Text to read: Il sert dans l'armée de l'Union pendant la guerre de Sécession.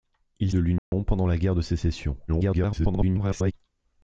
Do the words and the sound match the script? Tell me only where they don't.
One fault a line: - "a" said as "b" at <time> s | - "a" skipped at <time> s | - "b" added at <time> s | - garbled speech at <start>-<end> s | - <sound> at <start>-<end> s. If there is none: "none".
- "sert dans l'armée" skipped at 0.5 s
- dropout at 0.8-0.9 s
- garbled speech at 2.3-3.5 s